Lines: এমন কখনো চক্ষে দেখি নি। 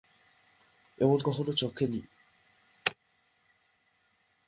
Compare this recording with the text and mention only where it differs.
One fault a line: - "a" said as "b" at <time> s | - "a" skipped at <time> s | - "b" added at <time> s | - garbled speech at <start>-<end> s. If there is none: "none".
- "দেখি" skipped at 1.8 s